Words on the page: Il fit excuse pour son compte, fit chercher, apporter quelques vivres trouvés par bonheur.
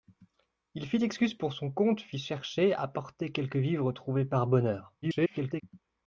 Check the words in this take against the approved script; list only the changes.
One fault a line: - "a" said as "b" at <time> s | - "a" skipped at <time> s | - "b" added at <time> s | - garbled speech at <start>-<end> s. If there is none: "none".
- garbled speech at 5.0-5.6 s